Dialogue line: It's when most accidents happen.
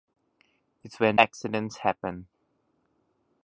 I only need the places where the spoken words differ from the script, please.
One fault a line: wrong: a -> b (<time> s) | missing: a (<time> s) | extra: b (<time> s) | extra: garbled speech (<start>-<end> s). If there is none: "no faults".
missing: most (1.2 s)